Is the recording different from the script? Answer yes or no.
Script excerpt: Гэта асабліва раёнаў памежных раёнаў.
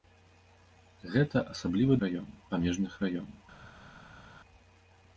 no